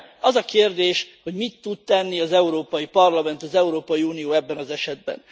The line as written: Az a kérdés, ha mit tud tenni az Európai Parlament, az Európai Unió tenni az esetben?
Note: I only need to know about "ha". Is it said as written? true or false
false